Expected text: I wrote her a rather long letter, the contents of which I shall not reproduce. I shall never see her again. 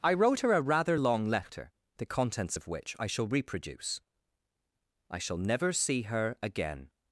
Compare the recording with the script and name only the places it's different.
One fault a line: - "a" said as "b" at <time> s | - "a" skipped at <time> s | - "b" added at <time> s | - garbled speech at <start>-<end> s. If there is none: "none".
- "not" skipped at 3.3 s